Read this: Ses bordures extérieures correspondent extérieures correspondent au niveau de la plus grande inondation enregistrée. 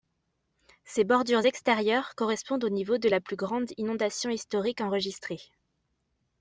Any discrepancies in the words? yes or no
yes